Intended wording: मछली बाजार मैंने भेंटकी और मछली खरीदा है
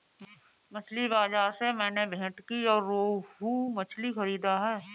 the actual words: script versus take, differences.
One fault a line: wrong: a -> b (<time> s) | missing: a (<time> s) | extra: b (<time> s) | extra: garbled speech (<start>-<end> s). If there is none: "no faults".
extra: से (1.5 s)
extra: रोहू (2.9 s)